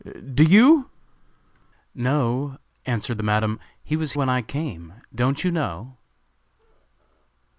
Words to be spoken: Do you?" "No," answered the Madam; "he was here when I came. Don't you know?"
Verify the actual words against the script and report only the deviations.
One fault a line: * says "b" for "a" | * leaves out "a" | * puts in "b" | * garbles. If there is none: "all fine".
* leaves out "here"